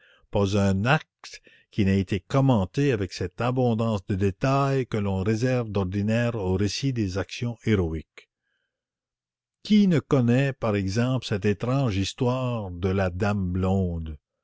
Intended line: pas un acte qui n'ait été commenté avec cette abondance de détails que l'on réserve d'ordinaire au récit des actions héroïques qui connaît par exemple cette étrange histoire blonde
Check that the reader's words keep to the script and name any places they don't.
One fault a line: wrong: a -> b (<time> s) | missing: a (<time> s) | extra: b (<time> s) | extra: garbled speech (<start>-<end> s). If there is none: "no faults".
extra: ne (9.9 s)
extra: de la dame (12.7 s)